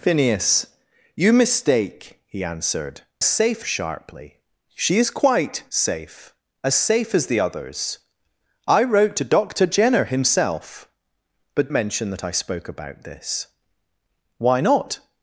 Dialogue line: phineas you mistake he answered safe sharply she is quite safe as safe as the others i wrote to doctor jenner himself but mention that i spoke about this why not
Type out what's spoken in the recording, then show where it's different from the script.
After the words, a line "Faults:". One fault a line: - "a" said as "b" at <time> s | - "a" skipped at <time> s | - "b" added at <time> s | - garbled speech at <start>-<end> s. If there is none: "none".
phineas you mistake he answered safe sharply she is quite safe as safe as the others i wrote to doctor jenner himself but mention that i spoke about this why not
Faults:
none